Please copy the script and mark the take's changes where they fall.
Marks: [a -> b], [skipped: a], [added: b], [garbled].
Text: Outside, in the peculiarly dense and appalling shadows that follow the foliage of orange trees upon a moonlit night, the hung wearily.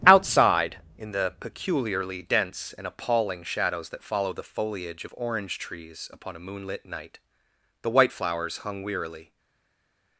Outside, in the peculiarly dense and appalling shadows that follow the foliage of orange trees upon a moonlit night, the [added: white flowers] hung wearily.